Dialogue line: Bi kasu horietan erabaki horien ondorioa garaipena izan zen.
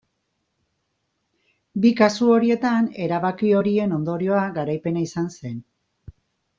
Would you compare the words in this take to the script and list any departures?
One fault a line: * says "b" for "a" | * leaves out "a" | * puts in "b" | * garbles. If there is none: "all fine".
all fine